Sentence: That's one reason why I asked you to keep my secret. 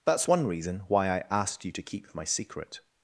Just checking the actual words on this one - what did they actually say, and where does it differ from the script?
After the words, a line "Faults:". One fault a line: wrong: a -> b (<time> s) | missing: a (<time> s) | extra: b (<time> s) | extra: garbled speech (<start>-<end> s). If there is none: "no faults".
That's one reason why I asked you to keep my secret.
Faults:
no faults